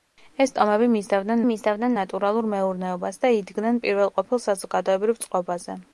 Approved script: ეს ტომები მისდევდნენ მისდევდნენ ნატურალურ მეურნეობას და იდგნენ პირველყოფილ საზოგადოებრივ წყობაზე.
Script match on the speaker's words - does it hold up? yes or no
yes